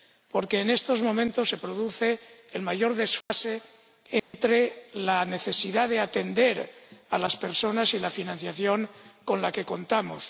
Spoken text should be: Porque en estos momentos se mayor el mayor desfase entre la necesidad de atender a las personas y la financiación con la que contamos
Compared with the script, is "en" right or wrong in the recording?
right